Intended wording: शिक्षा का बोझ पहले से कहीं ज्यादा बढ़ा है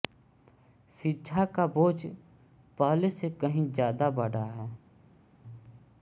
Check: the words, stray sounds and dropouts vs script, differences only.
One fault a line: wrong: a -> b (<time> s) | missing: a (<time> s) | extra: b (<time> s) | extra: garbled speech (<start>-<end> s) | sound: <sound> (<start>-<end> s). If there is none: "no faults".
no faults